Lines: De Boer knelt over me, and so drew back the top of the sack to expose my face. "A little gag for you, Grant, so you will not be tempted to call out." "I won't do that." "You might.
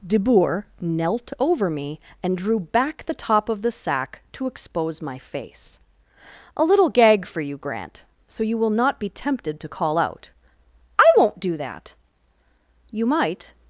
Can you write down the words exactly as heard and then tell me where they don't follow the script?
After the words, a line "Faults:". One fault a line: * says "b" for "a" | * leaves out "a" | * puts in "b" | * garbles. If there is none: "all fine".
De Boer knelt over me, and drew back the top of the sack to expose my face. "A little gag for you, Grant, so you will not be tempted to call out." "I won't do that." "You might.
Faults:
* leaves out "so"